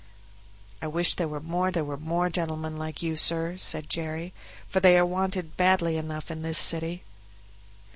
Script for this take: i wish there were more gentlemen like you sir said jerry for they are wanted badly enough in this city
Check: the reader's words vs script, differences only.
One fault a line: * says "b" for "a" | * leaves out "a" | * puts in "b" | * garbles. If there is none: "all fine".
* puts in "there were more"